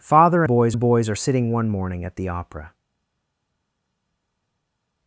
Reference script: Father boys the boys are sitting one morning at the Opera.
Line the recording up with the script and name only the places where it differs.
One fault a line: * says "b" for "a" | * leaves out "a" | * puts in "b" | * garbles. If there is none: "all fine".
all fine